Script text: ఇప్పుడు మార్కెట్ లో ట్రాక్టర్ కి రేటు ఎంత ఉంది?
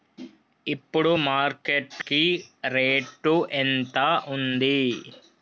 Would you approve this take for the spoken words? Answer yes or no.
no